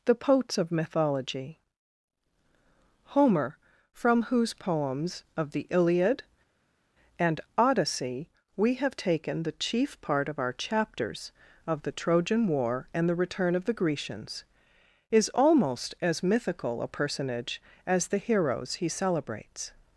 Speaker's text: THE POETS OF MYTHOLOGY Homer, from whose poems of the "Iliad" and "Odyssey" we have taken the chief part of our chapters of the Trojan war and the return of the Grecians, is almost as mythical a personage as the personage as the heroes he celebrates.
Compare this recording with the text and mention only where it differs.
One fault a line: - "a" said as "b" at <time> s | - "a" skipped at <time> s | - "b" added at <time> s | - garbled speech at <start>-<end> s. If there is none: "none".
- "personage as the" skipped at 18.2 s